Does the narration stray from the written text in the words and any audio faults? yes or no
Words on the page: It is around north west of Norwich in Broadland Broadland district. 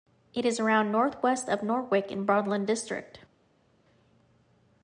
yes